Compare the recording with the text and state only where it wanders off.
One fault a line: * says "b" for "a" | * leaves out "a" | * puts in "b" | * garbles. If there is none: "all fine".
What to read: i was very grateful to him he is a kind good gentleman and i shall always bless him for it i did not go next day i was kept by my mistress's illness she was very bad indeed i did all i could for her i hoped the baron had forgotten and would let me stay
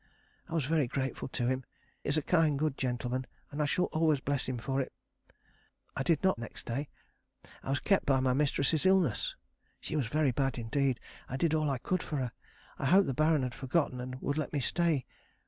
* leaves out "he"
* leaves out "go"